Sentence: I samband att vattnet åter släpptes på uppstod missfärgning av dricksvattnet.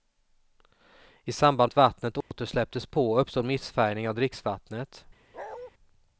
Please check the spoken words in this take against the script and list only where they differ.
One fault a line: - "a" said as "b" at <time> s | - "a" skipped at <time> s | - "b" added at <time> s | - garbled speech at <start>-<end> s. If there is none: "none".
none